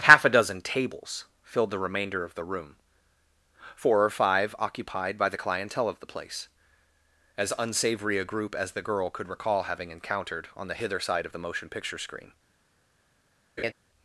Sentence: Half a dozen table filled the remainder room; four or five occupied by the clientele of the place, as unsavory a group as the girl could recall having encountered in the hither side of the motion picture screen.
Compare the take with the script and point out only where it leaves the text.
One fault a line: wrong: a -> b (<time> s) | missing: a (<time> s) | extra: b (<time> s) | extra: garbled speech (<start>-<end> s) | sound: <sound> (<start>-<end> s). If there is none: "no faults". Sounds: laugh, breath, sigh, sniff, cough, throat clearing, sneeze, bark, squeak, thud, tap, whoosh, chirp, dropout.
wrong: table -> tables (0.6 s)
extra: of the (2.2 s)
wrong: in -> on (10.6 s)
sound: laugh (13.6-13.7 s)